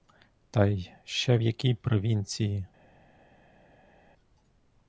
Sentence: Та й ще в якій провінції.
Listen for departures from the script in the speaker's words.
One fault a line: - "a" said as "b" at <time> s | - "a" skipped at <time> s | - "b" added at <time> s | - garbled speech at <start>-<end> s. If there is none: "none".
none